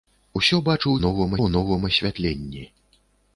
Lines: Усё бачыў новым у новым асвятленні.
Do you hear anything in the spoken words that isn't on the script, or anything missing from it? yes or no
no